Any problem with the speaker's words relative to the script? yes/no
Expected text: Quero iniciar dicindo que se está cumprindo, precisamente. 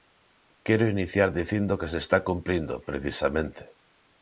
no